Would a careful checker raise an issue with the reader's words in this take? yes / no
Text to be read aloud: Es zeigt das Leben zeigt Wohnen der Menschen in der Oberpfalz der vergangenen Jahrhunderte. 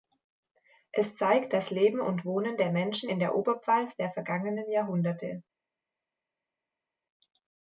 yes